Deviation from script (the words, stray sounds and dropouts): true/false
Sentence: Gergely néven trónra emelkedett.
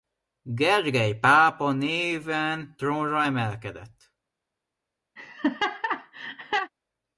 true